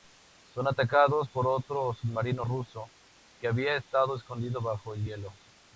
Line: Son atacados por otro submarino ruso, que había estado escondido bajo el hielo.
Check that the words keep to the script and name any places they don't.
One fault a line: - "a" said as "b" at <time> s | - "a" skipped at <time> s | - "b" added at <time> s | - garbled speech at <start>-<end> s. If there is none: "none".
none